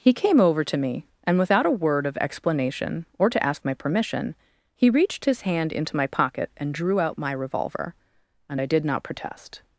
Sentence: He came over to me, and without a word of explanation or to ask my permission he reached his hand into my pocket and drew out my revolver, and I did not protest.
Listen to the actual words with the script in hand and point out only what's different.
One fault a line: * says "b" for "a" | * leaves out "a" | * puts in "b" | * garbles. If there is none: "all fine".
all fine